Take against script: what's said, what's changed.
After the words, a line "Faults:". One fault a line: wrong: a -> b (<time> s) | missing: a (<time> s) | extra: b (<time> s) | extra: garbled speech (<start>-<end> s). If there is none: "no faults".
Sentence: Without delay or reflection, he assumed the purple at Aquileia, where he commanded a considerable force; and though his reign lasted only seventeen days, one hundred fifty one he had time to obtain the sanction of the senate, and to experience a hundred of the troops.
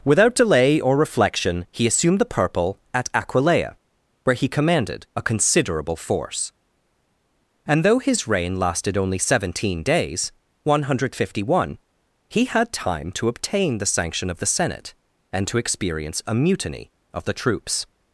Without delay or reflection, he assumed the purple at Aquileia, where he commanded a considerable force; and though his reign lasted only seventeen days, one hundred fifty one he had time to obtain the sanction of the senate, and to experience a mutiny of the troops.
Faults:
wrong: hundred -> mutiny (16.3 s)